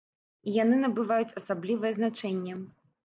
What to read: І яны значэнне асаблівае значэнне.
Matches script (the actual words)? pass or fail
fail